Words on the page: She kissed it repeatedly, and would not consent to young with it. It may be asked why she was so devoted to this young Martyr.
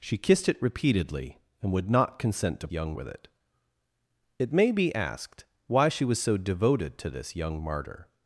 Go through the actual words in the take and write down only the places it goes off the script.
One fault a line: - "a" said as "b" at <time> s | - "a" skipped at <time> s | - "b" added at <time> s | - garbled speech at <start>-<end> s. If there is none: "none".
none